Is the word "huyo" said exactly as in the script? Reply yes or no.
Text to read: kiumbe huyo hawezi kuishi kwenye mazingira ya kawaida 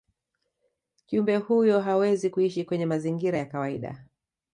yes